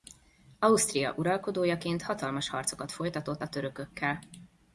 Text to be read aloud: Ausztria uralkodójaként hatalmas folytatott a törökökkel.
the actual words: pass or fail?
fail